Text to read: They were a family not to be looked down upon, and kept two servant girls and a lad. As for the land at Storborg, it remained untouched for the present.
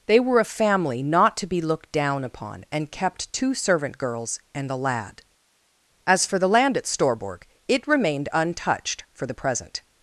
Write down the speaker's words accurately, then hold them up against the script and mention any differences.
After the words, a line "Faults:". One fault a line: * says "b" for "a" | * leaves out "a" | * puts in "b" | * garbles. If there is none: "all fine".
They were a family not to be looked down upon, and kept two servant girls and a lad. As for the land at Storborg, it remained untouched for the present.
Faults:
all fine